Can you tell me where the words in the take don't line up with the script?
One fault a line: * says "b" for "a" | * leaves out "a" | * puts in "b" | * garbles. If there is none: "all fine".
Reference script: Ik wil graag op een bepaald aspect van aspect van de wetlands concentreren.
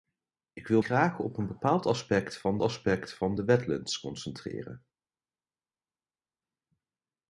all fine